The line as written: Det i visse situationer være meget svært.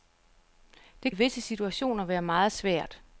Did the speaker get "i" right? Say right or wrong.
right